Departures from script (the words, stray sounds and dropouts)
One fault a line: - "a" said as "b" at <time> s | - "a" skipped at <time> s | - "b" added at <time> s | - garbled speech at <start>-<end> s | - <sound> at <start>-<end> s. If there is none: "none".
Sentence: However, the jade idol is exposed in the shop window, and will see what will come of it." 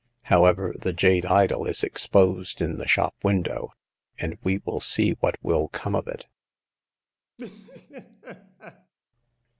- "we" added at 4.4 s
- laugh at 7.4-8.9 s